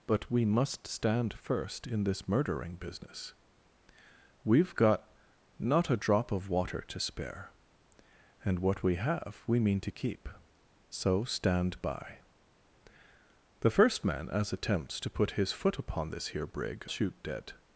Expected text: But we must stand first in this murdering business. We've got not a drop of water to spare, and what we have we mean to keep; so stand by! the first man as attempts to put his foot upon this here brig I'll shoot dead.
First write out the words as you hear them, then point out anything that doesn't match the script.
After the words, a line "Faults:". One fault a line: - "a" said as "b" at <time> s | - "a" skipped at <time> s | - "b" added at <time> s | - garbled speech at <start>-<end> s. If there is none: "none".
But we must stand first in this murdering business. We've got not a drop of water to spare, and what we have we mean to keep; so stand by! the first man as attempts to put his foot upon this here brig Shoot dead.
Faults:
- "I'll" skipped at 16.9 s